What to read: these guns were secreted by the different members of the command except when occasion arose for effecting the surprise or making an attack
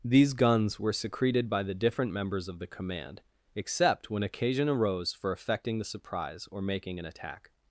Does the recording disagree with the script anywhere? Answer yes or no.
no